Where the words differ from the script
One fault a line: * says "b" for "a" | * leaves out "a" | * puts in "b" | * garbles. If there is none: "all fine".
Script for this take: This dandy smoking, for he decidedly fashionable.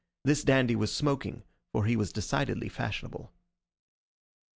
* puts in "was"
* puts in "was"